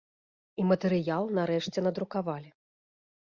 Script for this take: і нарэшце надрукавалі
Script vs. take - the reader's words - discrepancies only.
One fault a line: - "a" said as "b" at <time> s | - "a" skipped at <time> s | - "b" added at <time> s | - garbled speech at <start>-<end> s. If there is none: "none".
- "матэрыял" added at 0.7 s